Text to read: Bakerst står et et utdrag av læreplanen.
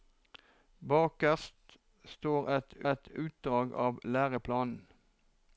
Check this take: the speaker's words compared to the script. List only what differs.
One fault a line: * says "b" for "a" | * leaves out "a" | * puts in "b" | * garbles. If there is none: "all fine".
all fine